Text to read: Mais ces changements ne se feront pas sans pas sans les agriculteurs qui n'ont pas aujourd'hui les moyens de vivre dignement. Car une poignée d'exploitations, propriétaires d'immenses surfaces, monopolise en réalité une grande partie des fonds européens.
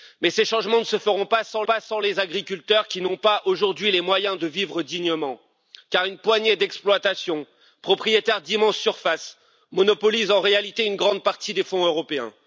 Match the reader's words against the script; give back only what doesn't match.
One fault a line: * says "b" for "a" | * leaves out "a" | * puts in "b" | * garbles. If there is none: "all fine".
all fine